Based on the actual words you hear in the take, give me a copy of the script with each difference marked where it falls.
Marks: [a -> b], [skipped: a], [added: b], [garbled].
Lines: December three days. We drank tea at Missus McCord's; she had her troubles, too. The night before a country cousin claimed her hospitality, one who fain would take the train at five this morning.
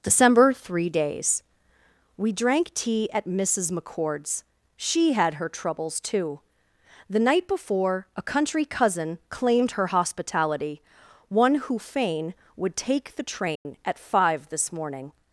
December three days. We drank tea at Missus McCord's; she had her troubles, too. The night before a country cousin claimed her hospitality, one who fain would take the train at five this morning.